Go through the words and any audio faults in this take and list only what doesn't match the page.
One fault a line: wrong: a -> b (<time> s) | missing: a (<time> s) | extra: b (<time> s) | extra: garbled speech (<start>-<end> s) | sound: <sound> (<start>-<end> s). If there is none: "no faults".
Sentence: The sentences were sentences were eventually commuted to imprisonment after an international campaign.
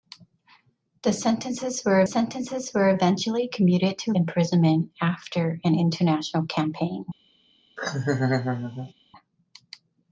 sound: laugh (7.8-8.9 s)